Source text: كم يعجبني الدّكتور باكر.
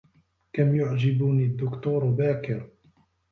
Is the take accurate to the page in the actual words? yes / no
yes